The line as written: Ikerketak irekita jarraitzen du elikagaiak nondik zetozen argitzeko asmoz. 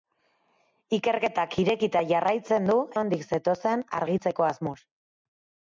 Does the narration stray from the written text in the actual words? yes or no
yes